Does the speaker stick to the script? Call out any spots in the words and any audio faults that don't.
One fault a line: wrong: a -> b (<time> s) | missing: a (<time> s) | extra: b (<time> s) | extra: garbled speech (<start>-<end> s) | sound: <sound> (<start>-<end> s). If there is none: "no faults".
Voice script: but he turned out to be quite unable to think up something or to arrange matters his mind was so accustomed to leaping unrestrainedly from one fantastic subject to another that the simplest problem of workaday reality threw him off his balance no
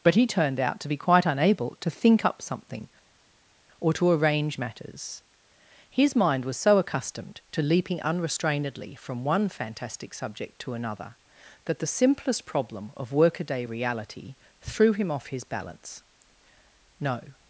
no faults